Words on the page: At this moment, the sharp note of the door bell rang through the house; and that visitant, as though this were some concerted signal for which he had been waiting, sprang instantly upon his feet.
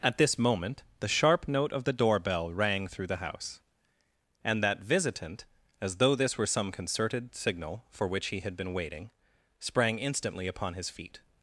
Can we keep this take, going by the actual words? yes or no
yes